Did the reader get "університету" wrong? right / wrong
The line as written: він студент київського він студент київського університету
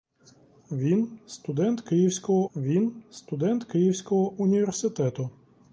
right